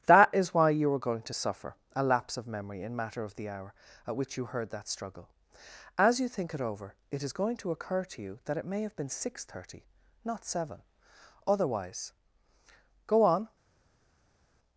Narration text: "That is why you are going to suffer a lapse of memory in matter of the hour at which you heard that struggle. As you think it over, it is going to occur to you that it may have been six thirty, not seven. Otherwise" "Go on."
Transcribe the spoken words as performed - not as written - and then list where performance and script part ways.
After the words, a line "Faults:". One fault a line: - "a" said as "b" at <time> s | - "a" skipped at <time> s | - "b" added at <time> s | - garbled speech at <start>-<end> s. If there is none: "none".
"That is why you are going to suffer a lapse of memory in matter of the hour at which you heard that struggle. As you think it over, it is going to occur to you that it may have been six thirty, not seven. Otherwise" "Go on."
Faults:
none